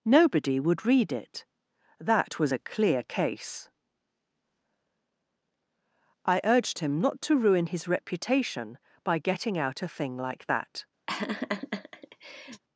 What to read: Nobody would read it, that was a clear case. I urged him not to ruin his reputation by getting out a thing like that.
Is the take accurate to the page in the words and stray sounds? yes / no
no